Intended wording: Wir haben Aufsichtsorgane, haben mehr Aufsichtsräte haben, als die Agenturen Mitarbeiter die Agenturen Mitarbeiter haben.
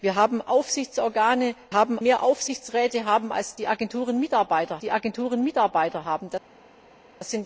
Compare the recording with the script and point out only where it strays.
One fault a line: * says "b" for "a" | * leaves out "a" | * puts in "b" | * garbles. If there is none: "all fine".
all fine